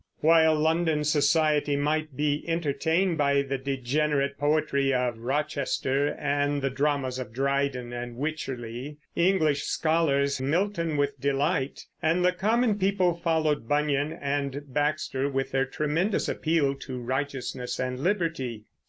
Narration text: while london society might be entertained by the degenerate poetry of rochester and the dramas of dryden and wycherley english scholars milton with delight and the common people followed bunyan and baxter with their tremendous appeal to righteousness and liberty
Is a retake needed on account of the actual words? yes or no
no